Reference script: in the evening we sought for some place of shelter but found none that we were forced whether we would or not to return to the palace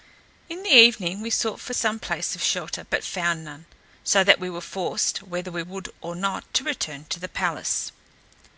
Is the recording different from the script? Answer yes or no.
yes